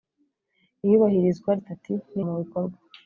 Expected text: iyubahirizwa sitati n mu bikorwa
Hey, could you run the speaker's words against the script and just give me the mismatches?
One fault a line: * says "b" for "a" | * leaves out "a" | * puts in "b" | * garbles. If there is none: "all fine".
all fine